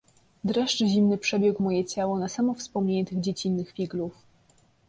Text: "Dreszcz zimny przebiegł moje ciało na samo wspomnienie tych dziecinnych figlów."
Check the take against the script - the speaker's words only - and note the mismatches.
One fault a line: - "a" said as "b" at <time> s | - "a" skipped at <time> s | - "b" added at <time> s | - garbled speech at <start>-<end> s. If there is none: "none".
none